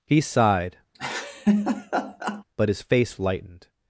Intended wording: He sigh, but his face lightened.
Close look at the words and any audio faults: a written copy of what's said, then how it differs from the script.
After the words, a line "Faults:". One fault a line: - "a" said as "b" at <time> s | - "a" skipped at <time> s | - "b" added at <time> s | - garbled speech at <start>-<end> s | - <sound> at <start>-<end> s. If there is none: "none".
He sighed, but his face lightened.
Faults:
- "sigh" said as "sighed" at 0.2 s
- laugh at 0.9-2.4 s